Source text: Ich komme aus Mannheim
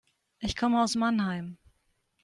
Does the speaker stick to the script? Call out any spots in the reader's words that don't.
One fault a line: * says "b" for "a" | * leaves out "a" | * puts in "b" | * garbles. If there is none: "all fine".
all fine